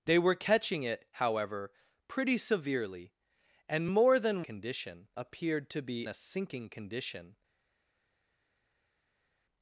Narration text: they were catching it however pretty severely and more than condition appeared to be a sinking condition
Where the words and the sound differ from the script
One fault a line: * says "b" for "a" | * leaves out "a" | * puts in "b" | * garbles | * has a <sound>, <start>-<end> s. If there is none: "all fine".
all fine